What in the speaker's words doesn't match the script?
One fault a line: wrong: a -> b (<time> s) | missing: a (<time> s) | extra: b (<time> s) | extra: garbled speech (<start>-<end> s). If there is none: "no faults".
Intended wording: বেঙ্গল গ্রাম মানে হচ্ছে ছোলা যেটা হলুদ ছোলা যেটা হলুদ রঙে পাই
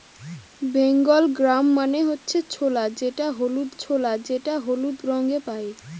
no faults